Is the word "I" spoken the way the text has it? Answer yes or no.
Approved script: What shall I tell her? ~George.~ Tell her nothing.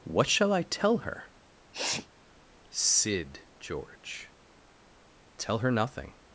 yes